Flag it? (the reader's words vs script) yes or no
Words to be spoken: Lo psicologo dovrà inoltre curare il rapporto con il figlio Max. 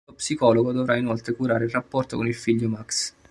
no